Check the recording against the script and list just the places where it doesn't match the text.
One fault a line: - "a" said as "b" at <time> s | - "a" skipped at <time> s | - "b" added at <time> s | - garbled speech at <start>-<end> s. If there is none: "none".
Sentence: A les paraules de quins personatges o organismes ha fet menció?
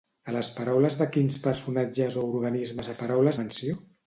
- "fet" said as "paraules" at 3.0 s